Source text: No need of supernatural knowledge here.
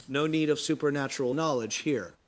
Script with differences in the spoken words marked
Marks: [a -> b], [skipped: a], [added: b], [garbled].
No need of supernatural knowledge here.